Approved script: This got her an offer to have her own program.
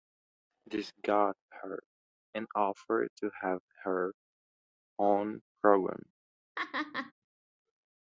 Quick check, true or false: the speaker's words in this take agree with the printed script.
true